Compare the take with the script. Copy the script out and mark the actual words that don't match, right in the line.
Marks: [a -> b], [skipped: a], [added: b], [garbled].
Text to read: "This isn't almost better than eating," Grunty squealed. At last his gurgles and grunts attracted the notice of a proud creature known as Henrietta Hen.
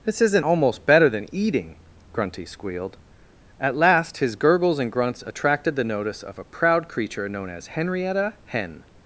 "This isn't almost better than eating," Grunty squealed. At last his gurgles and grunts attracted the notice of a proud creature known as Henrietta Hen.